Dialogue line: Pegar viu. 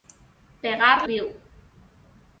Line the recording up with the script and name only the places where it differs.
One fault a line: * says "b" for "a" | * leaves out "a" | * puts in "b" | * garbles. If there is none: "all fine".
all fine